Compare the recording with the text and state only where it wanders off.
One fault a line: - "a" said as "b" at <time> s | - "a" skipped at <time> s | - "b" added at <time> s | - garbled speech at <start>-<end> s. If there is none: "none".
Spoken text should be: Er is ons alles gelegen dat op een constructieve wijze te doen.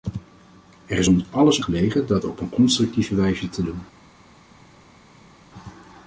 none